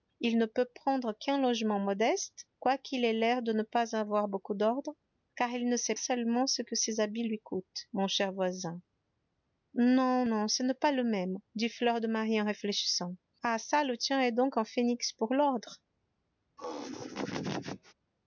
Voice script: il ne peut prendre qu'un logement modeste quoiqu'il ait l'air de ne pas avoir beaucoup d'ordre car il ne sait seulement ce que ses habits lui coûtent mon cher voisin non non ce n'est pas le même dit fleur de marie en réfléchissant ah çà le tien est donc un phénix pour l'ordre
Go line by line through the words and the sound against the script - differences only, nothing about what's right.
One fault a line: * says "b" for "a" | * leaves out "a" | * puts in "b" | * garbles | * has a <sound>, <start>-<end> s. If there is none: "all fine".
* has a laugh, 16.6-17.9 s